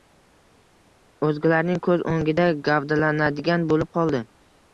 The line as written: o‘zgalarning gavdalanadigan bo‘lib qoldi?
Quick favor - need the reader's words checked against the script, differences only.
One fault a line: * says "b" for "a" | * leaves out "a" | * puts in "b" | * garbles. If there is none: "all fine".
* puts in "ko‘z o‘ngida"